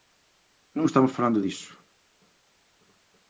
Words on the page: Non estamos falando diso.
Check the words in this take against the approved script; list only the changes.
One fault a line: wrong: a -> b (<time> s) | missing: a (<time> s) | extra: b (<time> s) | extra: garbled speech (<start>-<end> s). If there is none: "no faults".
no faults